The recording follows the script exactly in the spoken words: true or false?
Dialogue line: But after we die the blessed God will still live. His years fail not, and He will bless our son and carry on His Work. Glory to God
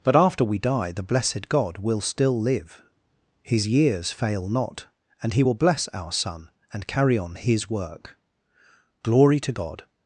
true